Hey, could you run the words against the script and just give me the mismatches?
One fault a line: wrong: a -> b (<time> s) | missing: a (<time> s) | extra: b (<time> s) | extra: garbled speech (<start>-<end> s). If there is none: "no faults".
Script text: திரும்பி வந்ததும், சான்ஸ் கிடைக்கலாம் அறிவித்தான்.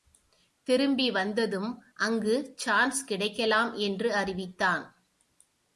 extra: அங்கு (1.9 s)
extra: என்று (3.7 s)